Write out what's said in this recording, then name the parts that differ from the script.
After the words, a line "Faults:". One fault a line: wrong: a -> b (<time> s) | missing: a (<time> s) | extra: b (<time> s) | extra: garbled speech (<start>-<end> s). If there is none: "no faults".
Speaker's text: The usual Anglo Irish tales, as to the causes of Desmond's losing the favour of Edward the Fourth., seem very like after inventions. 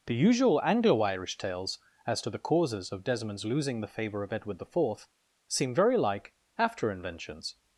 The usual Anglo Irish tales, as to the causes of Desmond's losing the favour of Edward the Fourth., seem very like after inventions.
Faults:
no faults